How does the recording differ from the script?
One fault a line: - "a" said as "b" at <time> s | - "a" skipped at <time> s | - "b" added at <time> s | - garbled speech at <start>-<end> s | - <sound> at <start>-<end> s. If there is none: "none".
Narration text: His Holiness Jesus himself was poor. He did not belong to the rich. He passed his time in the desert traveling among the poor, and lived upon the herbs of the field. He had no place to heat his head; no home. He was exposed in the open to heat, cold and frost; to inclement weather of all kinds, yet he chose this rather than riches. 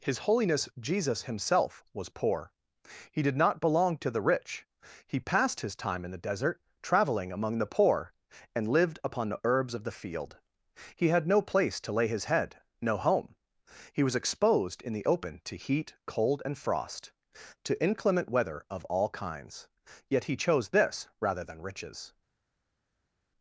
- "heat" said as "lay" at 11.9 s